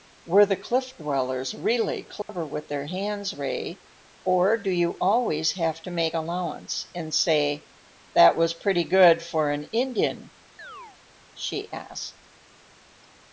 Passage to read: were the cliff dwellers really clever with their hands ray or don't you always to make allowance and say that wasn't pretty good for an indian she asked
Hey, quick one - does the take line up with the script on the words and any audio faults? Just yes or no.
no